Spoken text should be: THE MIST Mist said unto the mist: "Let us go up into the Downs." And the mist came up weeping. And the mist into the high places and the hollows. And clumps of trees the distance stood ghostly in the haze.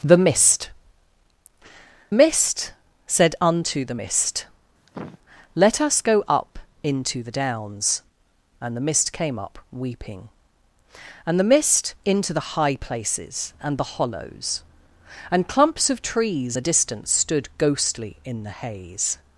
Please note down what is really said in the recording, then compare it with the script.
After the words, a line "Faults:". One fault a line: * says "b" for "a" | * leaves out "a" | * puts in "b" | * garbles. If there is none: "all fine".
THE MIST Mist said unto the mist: "Let us go up into the Downs." And the mist came up weeping. And the mist into the high places and the hollows. And clumps of trees the distance stood ghostly in the haze.
Faults:
all fine